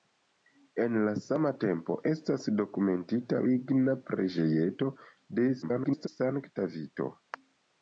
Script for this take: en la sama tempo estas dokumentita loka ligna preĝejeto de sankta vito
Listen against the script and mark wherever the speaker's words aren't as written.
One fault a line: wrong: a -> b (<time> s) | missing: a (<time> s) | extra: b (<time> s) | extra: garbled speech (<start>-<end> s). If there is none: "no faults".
missing: loka (3.4 s)
extra: garbled speech (5.6-6.1 s)